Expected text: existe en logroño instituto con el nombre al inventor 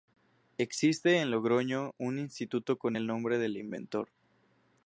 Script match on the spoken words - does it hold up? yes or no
no